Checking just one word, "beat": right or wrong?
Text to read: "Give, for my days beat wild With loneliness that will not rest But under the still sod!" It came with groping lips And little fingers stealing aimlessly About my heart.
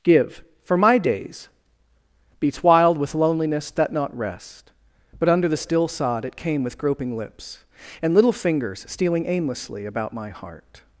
wrong